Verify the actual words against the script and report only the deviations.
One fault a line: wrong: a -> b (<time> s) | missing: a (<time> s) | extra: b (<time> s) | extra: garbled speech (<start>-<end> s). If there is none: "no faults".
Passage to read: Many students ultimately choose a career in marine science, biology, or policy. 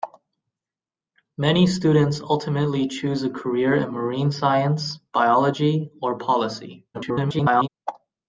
extra: garbled speech (6.9-7.7 s)